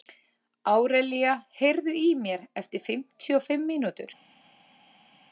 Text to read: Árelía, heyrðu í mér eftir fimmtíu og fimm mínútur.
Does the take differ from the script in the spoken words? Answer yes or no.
no